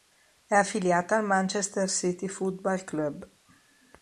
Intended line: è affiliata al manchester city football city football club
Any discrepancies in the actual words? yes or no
yes